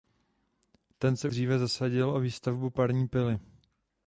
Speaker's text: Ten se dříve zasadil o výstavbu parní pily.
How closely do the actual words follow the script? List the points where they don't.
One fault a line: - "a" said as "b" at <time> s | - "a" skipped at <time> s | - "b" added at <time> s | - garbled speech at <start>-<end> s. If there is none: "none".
none